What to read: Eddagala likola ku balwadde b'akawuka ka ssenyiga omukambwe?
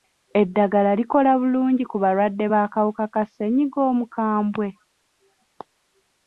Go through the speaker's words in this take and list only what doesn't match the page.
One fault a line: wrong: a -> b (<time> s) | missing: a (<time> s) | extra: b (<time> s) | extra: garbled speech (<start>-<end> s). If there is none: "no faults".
extra: bulungi (1.4 s)